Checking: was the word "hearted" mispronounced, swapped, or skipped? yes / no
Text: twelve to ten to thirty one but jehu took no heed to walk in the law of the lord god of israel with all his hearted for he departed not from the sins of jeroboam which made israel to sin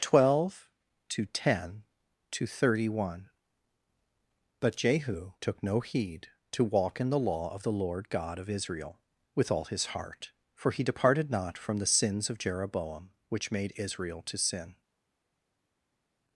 yes